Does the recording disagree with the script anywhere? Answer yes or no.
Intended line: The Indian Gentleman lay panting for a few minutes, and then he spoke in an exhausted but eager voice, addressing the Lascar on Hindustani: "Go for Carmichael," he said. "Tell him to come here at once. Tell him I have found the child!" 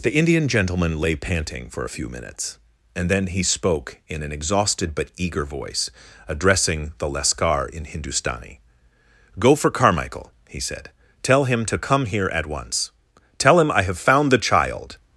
yes